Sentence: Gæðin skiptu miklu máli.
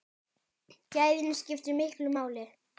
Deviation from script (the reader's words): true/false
false